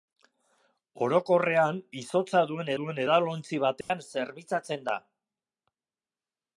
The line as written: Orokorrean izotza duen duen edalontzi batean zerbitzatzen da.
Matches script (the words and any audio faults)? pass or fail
fail